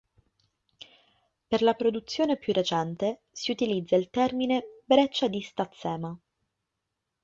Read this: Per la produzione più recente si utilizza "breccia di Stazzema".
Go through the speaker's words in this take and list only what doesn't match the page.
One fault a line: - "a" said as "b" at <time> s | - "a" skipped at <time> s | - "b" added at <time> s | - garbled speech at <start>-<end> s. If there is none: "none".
- "il termine" added at 4.0 s